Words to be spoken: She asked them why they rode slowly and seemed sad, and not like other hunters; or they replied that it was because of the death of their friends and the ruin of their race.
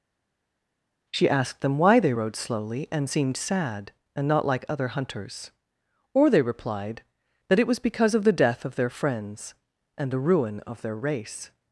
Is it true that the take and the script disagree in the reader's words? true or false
false